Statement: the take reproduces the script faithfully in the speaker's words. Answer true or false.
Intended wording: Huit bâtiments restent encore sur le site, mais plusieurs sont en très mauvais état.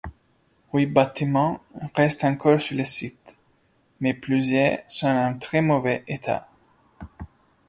true